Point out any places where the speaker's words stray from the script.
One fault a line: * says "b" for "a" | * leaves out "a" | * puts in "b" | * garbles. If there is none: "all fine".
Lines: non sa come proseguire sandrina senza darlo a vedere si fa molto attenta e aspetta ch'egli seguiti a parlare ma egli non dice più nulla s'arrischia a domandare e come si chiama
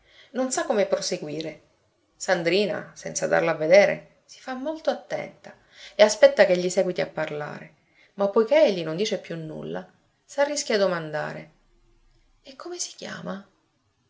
* puts in "poiché"